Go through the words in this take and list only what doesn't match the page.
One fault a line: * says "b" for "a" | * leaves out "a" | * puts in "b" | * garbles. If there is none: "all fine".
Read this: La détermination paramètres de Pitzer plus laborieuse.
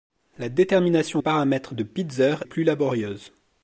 all fine